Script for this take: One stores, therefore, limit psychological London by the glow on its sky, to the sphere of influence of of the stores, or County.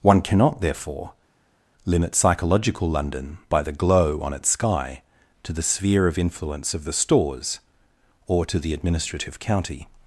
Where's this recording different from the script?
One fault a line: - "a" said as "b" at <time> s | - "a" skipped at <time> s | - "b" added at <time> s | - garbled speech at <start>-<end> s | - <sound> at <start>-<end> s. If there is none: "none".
- "stores" said as "cannot" at 0.2 s
- "of" skipped at 6.8 s
- "to the Administrative" added at 8.5 s